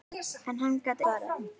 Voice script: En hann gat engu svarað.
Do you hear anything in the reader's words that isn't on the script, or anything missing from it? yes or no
yes